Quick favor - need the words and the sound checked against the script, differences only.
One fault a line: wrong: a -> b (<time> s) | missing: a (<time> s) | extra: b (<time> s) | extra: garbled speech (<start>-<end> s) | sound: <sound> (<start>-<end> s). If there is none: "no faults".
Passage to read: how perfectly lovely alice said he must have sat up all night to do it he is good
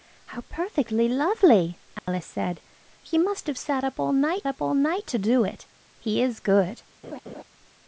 sound: dropout (2.0-2.1 s)
extra: up all night (4.5 s)
sound: laugh (7.0-7.4 s)